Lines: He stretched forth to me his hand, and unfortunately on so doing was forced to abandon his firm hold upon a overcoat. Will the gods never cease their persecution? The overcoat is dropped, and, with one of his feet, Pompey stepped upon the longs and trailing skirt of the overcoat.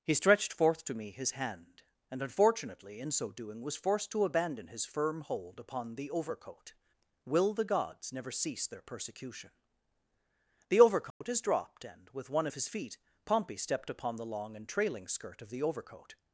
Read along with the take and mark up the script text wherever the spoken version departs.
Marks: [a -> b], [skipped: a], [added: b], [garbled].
He stretched forth to me his hand, and unfortunately [on -> in] so doing was forced to abandon his firm hold upon [a -> the] overcoat. Will the gods never cease their persecution? The overcoat is dropped, and, with one of his feet, Pompey stepped upon the [longs -> long] and trailing skirt of the overcoat.